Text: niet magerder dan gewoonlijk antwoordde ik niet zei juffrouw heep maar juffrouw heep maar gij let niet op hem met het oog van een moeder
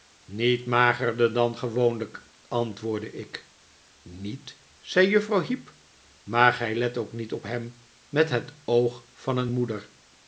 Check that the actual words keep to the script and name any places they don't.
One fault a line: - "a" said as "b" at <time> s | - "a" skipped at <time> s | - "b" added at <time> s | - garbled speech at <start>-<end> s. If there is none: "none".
- "juffrouw heep maar" skipped at 6.5 s
- "ook" added at 7.0 s